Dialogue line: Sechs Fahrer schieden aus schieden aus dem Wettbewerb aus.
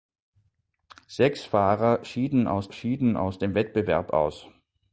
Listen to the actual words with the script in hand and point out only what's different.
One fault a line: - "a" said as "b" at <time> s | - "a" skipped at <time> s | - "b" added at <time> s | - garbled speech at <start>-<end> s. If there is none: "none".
none